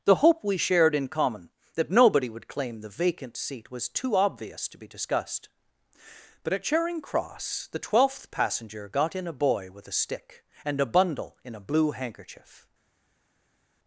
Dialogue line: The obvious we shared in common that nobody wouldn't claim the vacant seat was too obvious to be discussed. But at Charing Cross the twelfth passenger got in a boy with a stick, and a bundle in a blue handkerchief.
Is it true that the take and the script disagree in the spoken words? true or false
true